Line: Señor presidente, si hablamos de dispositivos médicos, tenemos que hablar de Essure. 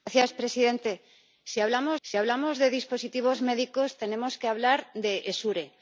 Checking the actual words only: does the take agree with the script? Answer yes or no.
no